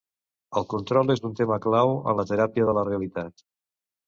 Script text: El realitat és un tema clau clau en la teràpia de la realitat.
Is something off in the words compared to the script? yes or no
yes